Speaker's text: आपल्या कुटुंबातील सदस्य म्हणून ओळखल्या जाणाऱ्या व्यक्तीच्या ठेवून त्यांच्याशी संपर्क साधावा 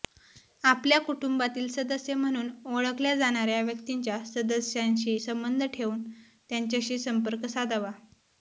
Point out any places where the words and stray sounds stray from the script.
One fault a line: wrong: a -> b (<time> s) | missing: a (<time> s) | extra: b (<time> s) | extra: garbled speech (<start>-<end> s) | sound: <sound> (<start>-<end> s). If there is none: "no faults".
extra: सदस्यांशी संबंध (4.2 s)